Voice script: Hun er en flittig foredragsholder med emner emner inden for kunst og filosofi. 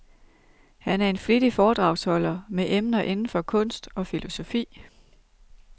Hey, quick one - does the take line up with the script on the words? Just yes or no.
no